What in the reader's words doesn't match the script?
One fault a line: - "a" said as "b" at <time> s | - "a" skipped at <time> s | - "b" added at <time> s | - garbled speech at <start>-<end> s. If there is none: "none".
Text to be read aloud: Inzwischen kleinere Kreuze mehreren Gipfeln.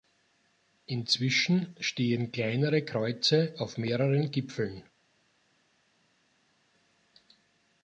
- "stehen" added at 1.8 s
- "auf" added at 3.6 s